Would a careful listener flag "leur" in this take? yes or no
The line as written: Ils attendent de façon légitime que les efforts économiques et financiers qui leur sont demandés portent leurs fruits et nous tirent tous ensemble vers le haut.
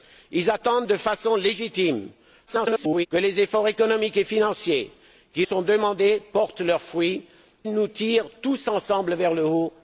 yes